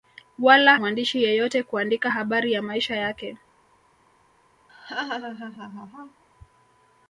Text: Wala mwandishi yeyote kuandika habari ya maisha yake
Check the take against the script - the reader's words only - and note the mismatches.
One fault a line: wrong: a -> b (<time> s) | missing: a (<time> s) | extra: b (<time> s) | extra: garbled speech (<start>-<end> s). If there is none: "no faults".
no faults